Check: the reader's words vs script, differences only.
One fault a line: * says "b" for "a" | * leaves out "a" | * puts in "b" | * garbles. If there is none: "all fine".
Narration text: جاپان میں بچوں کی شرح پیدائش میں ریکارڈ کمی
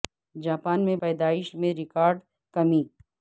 * leaves out "بچوں کی شرح"